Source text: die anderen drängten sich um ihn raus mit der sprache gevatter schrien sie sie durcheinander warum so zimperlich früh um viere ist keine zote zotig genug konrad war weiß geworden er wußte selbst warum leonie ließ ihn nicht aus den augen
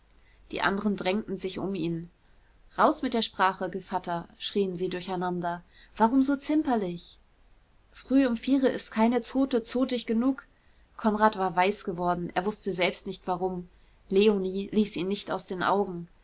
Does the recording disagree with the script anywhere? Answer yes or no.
yes